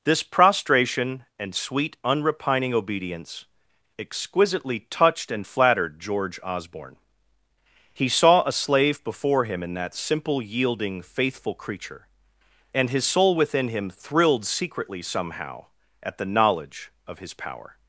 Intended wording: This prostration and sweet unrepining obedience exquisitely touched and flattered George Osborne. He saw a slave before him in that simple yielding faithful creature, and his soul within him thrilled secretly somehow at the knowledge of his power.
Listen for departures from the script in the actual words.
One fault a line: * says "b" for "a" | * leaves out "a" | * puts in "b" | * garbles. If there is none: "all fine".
all fine